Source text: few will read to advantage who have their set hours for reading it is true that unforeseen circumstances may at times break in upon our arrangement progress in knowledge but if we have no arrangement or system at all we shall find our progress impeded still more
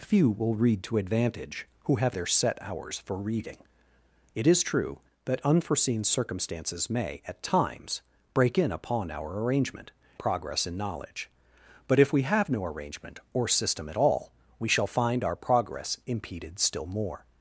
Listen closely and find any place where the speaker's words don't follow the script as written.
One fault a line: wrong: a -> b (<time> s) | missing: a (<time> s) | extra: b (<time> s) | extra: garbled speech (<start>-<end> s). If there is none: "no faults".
no faults